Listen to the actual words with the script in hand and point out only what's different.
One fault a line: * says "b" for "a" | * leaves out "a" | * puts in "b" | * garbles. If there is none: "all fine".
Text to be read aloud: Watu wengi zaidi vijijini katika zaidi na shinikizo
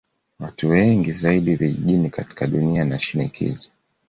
* says "dunia" for "zaidi"